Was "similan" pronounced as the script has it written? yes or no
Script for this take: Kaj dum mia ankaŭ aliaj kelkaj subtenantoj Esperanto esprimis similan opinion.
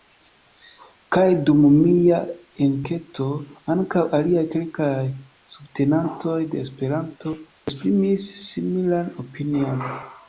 yes